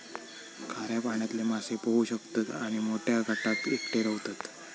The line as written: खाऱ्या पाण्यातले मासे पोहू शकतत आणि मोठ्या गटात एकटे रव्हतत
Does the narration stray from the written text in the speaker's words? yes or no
no